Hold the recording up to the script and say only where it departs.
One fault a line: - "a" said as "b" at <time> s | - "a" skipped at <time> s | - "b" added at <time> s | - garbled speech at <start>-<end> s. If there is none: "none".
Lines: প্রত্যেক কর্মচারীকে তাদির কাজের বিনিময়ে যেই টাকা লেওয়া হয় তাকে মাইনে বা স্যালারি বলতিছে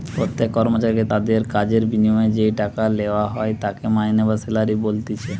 none